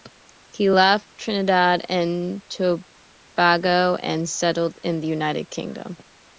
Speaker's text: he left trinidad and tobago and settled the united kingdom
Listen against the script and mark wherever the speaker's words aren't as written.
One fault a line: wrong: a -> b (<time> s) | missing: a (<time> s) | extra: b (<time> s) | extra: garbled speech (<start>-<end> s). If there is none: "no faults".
extra: in (4.8 s)